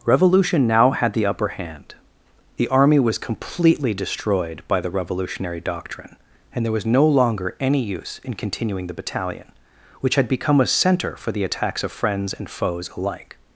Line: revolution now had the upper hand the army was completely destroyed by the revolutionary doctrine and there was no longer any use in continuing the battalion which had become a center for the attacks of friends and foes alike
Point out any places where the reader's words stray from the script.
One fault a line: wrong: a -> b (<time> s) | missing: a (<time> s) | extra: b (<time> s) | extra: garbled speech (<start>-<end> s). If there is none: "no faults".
no faults